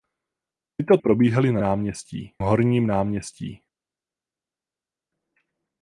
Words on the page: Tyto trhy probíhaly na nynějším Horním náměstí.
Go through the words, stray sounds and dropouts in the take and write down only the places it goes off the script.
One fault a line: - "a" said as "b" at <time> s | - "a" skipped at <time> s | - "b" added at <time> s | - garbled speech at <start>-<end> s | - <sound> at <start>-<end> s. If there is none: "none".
- "trhy" skipped at 1.0 s
- "nynějším" said as "náměstí" at 1.6 s